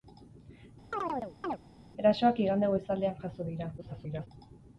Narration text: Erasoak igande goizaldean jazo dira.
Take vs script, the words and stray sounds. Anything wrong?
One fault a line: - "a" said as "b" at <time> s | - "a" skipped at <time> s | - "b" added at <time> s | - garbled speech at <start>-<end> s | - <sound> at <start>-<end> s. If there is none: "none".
- chirp at 0.9-1.6 s
- garbled speech at 3.8-4.3 s